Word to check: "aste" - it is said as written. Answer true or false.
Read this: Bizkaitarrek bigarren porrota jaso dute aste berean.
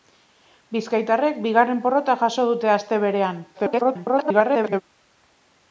true